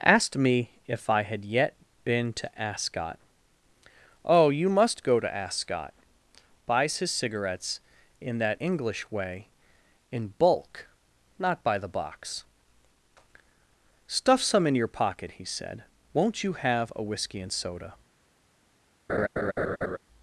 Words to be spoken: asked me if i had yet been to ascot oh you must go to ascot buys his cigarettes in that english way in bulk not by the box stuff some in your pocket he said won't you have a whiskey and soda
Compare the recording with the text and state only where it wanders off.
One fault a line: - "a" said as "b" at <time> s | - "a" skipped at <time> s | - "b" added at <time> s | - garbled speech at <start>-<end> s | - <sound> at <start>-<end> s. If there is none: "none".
- laugh at 19.1-20.0 s